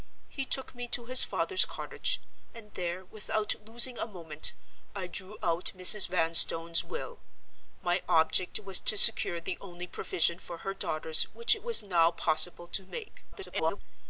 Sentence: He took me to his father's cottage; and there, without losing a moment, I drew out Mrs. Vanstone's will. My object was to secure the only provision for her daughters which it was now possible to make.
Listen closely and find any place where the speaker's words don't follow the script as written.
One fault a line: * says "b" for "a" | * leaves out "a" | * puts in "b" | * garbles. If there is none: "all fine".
* garbles